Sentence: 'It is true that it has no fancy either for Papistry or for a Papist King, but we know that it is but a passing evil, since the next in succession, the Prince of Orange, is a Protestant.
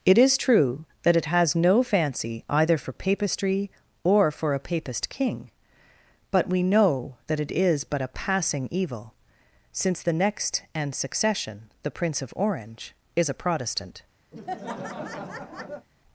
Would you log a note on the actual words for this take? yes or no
yes